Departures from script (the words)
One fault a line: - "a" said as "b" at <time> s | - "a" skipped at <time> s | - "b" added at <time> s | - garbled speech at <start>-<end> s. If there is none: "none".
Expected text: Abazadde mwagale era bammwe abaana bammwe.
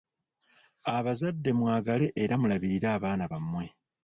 - "bammwe" said as "mulabirire" at 2.4 s